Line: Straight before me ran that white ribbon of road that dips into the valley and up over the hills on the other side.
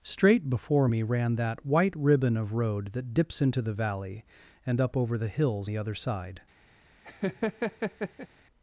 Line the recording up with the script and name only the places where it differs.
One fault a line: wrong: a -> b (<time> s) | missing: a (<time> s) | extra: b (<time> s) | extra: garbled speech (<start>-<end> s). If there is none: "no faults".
missing: on (5.7 s)